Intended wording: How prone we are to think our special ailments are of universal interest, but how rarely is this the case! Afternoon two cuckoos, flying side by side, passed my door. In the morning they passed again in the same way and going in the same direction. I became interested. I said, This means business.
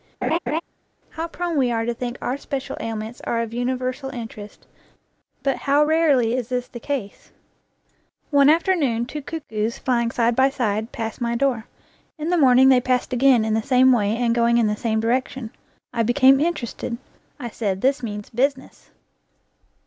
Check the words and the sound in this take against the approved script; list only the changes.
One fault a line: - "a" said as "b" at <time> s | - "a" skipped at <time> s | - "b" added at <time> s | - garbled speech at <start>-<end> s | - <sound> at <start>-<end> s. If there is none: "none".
- laugh at 0.2-0.6 s
- "One" added at 8.3 s